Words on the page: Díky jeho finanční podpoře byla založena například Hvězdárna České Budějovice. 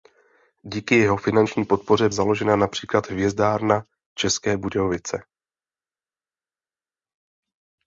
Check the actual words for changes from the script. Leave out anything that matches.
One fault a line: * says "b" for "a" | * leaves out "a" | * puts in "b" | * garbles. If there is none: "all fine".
* leaves out "byla"